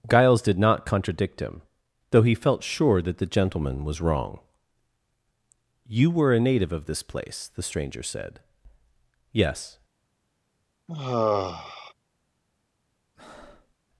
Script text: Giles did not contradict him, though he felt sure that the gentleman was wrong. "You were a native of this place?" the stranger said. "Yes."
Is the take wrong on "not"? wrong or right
right